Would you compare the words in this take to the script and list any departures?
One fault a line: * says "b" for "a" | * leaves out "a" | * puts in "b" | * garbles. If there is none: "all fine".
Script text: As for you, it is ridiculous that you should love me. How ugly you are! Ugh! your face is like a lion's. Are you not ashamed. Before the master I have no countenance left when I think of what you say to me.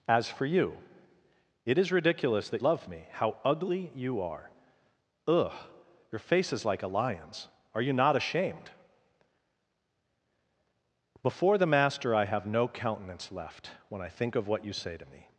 * leaves out "you should"